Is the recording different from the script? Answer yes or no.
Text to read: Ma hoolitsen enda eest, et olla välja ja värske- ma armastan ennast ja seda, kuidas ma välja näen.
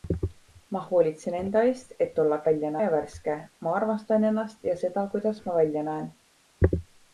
no